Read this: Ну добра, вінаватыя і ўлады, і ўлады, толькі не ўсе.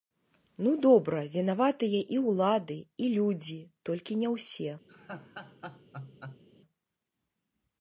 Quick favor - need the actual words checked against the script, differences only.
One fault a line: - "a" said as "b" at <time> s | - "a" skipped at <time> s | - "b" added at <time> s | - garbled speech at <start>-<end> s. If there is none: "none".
- "ўлады" said as "людзі" at 3.2 s